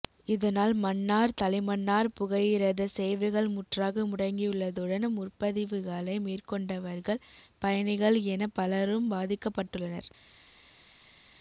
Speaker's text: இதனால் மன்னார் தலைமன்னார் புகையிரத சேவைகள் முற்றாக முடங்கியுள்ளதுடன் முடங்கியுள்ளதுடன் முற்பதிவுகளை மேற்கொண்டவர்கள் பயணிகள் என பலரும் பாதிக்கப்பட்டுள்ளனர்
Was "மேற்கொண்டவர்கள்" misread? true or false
false